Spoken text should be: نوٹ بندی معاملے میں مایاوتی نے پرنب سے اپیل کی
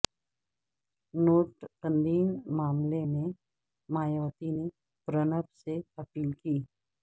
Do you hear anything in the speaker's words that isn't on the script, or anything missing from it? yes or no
no